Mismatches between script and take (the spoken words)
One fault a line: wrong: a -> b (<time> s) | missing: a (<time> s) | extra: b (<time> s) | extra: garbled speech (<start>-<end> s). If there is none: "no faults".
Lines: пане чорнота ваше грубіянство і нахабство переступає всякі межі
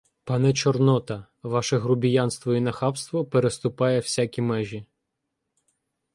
no faults